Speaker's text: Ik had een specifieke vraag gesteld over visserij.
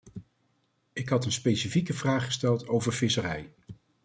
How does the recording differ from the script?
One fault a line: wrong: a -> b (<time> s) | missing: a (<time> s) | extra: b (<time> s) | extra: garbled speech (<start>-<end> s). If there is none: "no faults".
no faults